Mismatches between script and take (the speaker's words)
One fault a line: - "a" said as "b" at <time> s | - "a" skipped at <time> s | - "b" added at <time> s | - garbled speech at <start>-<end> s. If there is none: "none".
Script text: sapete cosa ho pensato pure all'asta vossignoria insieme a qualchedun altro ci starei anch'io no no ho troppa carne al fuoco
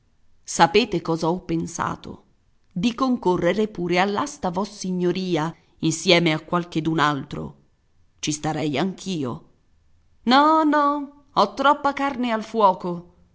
- "di concorrere" added at 2.7 s